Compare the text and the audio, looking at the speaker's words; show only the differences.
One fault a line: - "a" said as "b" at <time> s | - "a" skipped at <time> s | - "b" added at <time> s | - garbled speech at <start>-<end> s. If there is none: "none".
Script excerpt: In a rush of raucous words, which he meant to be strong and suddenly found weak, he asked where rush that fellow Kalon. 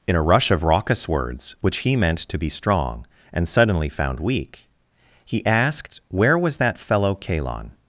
- "rush" said as "was" at 6.4 s